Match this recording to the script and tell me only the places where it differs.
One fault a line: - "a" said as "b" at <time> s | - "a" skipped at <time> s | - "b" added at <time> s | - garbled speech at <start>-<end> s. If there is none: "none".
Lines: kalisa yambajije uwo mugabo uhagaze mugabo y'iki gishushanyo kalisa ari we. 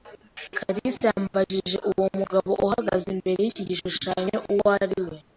- "mugabo" said as "imbere" at 3.1 s
- "kalisa" said as "uwo" at 4.5 s